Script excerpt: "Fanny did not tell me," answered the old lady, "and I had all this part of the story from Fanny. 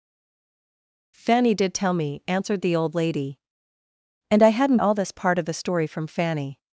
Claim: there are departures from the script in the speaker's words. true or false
true